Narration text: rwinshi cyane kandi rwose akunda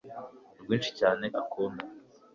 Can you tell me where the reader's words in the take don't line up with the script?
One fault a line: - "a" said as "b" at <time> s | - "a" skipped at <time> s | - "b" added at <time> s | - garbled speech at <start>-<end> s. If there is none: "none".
- "kandi rwose" skipped at 1.2 s